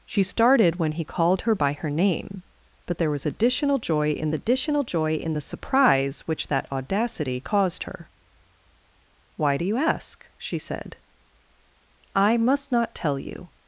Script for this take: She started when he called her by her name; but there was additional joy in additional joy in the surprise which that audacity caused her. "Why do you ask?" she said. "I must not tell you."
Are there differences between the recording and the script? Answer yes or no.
no